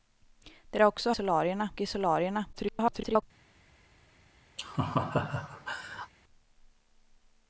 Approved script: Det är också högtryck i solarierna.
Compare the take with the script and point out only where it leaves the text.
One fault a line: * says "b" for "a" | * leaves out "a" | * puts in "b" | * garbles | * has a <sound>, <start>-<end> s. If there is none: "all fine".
* says "solarierna" for "högtryck"
* garbles
* has a laugh, 4.6-6.1 s